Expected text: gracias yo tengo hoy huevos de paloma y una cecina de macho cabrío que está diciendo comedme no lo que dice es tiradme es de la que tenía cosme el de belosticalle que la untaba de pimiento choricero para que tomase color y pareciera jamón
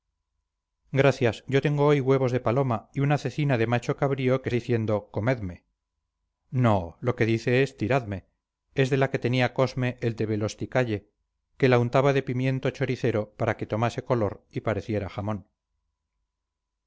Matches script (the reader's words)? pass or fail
fail